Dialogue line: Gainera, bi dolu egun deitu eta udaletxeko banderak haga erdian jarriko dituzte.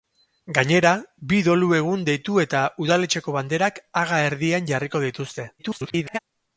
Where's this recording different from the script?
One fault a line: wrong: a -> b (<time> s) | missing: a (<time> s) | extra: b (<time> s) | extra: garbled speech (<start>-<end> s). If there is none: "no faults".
extra: garbled speech (5.6-6.2 s)